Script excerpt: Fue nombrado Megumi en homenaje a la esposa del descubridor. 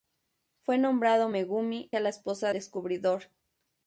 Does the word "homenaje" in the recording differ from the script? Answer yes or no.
yes